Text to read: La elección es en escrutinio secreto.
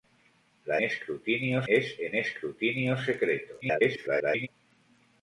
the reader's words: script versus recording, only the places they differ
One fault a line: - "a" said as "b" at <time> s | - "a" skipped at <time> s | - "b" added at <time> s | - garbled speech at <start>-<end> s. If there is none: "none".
- "elección" said as "escrutinio" at 0.8 s
- garbled speech at 3.6-4.5 s